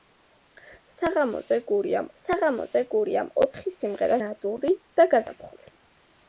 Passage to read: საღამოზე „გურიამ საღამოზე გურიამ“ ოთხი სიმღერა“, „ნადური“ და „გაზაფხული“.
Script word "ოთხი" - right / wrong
right